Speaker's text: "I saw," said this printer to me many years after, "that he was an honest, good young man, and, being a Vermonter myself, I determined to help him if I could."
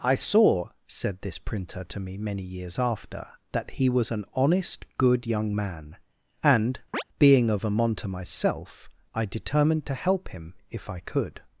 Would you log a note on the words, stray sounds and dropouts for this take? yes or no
yes